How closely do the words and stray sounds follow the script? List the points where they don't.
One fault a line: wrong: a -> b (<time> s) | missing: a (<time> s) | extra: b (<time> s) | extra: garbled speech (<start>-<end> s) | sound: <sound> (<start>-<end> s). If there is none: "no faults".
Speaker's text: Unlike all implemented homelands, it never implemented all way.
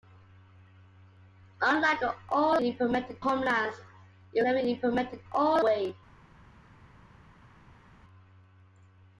no faults